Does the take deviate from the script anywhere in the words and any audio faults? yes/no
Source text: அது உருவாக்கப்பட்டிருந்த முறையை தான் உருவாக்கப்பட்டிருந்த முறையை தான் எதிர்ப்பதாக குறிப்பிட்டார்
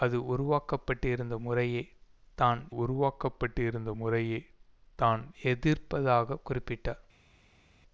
no